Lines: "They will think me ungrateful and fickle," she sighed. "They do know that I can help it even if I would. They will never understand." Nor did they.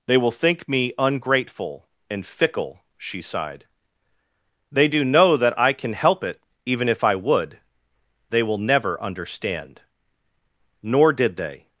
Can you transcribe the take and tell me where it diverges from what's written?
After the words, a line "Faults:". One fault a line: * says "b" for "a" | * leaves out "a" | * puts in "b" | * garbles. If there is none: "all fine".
"They will think me ungrateful and fickle," she sighed. "They do know that I can help it even if I would. They will never understand." Nor did they.
Faults:
all fine